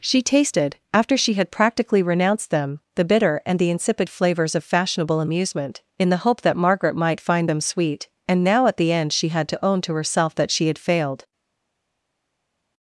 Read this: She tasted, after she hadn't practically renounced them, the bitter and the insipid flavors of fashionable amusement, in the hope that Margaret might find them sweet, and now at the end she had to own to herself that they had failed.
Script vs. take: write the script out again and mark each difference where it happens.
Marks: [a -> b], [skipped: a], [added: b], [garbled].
She tasted, after she [hadn't -> had] practically renounced them, the bitter and the insipid flavors of fashionable amusement, in the hope that Margaret might find them sweet, and now at the end she had to own to herself that [they -> she] had failed.